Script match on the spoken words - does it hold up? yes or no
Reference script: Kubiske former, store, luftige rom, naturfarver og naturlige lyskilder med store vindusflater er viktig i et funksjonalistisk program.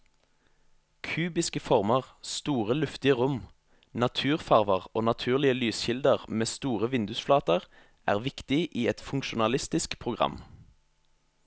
yes